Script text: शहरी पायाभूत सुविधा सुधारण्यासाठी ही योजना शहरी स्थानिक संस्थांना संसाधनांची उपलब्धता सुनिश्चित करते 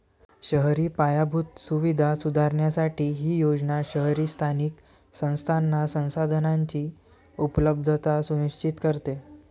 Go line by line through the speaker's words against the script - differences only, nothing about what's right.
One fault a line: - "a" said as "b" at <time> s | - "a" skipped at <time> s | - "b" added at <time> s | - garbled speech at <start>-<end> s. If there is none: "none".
none